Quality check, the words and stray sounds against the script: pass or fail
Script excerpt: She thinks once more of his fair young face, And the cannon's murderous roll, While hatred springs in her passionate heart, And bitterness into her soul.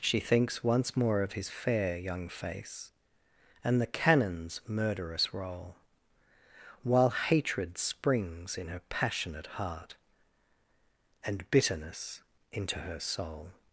pass